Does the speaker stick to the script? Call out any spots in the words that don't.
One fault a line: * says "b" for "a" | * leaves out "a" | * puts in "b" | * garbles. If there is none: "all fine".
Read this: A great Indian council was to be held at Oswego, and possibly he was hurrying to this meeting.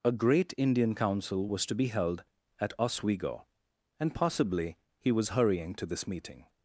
all fine